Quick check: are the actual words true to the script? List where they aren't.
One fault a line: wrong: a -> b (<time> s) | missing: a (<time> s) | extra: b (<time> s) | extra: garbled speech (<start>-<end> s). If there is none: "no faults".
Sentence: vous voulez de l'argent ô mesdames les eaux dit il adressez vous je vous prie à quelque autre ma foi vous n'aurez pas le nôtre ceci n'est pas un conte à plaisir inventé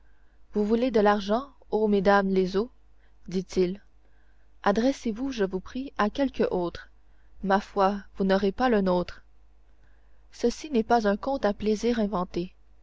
no faults